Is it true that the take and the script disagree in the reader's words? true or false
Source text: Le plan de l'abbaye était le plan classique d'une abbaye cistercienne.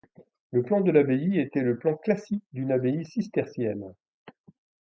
false